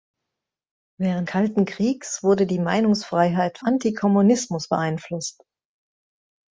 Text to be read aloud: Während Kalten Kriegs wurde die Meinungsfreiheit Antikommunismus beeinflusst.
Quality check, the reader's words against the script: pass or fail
pass